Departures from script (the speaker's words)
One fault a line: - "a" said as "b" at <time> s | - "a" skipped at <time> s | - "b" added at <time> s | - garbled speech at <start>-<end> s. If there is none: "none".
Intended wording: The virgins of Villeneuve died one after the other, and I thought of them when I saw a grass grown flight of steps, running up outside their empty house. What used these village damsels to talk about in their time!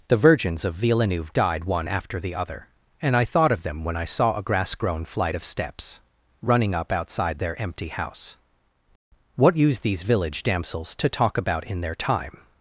none